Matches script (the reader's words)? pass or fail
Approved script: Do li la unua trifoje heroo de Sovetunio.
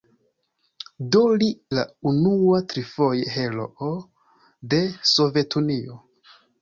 pass